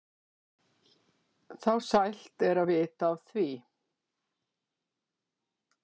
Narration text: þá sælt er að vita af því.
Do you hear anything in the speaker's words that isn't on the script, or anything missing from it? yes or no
no